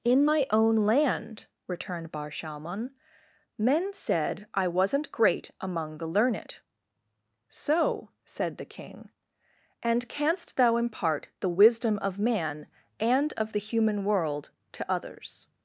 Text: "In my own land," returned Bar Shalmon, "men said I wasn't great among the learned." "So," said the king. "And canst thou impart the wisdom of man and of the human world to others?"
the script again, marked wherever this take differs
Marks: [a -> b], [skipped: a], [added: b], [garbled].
"In my own land," returned Bar Shalmon, "men said I wasn't great among the learned." "So," said the king. "And canst thou impart the wisdom of man and of the human world to others?"